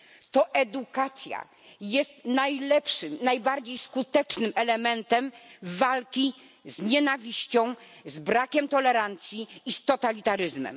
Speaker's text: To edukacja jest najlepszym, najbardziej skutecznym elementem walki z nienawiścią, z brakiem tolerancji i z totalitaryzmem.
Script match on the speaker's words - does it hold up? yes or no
yes